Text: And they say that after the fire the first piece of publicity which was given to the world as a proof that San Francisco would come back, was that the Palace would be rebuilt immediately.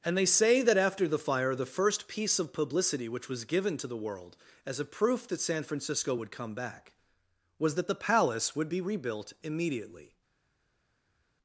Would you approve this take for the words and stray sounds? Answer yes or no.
yes